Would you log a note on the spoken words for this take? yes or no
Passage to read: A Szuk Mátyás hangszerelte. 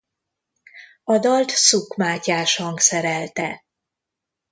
yes